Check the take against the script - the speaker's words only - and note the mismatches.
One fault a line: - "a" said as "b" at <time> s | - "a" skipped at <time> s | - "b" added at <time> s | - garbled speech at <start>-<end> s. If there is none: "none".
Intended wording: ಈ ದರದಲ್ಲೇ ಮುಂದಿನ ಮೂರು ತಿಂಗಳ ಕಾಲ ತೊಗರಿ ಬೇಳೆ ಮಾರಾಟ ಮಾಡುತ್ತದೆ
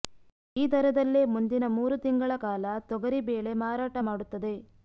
none